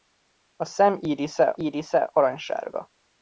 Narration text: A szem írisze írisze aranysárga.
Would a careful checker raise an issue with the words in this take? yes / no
no